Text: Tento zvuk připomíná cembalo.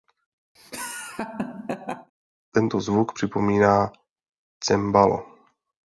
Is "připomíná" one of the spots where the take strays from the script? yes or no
no